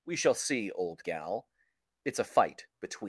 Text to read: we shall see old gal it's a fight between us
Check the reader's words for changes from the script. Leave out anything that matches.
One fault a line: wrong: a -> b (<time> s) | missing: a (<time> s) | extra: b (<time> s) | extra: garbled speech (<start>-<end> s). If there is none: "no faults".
missing: us (3.0 s)